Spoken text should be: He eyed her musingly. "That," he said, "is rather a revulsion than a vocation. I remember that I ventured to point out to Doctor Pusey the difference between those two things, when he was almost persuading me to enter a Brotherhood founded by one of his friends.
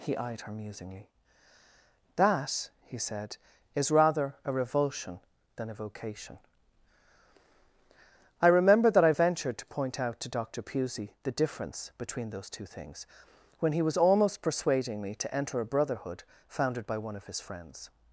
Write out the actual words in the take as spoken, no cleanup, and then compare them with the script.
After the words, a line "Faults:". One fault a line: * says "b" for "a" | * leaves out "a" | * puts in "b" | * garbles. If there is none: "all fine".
He eyed her musingly. "That," he said, "is rather a revulsion than a vocation. I remember that I ventured to point out to Doctor Pusey the difference between those two things, when he was almost persuading me to enter a Brotherhood founded by one of his friends.
Faults:
all fine